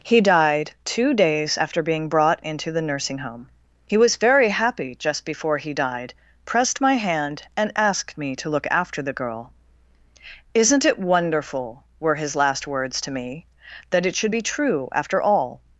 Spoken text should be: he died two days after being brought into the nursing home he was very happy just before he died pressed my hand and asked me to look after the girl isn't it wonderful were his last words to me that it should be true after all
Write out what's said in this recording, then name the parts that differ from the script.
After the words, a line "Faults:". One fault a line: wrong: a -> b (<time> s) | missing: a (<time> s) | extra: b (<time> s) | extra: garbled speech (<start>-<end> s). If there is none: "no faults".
he died two days after being brought into the nursing home he was very happy just before he died pressed my hand and asked me to look after the girl isn't it wonderful were his last words to me that it should be true after all
Faults:
no faults